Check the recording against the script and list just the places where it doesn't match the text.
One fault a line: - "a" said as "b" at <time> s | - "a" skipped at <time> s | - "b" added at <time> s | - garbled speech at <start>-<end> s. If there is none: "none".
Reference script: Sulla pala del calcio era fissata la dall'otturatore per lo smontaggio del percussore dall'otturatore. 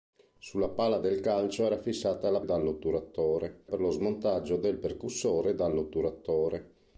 none